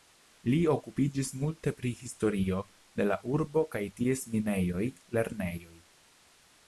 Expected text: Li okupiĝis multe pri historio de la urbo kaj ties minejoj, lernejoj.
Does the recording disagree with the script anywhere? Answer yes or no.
no